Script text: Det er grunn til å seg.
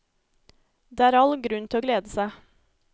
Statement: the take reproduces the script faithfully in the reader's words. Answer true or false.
false